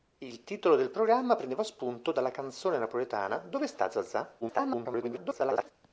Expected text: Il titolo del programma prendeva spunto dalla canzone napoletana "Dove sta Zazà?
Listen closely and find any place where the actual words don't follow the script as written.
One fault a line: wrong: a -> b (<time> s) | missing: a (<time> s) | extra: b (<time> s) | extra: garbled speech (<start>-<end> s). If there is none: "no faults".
extra: garbled speech (4.4-5.7 s)